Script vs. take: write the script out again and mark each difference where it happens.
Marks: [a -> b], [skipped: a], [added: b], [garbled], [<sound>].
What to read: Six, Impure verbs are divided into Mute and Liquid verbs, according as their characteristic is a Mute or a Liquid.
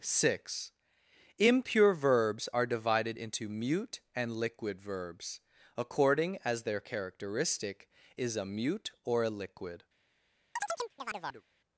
Six, Impure verbs are divided into Mute and Liquid verbs, according as their characteristic is a Mute or a Liquid. [chirp]